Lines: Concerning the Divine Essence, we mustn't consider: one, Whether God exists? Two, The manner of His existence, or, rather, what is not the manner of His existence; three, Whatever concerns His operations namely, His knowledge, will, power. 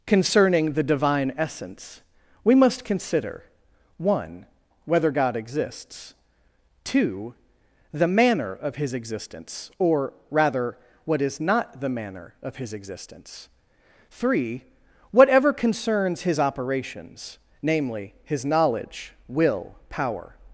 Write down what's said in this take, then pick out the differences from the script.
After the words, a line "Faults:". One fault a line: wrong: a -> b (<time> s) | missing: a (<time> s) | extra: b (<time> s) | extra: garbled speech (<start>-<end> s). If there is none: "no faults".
Concerning the Divine Essence, we must consider: one, Whether God exists? Two, The manner of His existence, or, rather, what is not the manner of His existence; three, Whatever concerns His operations namely, His knowledge, will, power.
Faults:
wrong: mustn't -> must (2.5 s)